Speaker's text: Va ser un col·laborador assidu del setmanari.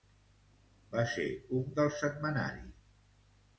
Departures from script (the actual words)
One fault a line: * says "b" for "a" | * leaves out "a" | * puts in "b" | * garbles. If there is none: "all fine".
* leaves out "col·laborador assidu"